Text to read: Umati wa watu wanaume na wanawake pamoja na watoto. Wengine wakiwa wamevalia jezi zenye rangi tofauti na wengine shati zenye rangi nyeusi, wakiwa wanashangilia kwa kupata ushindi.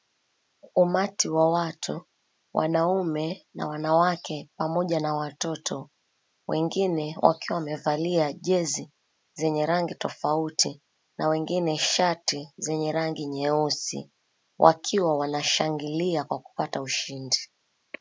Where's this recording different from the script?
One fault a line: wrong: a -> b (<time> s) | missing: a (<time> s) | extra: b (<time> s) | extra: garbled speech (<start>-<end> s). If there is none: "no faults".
no faults